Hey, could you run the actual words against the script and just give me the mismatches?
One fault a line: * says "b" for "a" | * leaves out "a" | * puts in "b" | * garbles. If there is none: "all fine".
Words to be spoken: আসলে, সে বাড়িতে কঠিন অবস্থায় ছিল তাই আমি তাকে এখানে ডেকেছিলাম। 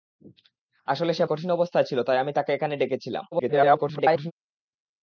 * leaves out "বাড়িতে"
* garbles